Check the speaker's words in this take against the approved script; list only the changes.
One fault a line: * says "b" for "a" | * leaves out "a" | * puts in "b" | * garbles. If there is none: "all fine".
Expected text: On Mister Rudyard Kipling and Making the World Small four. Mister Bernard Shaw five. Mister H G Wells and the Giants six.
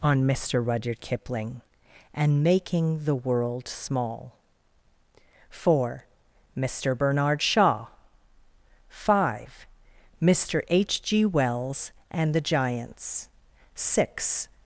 all fine